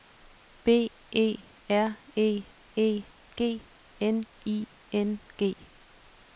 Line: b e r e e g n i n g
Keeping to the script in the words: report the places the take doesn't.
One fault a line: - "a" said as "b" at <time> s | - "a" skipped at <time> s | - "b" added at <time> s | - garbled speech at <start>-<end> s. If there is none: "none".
none